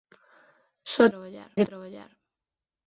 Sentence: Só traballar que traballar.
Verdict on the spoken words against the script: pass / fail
pass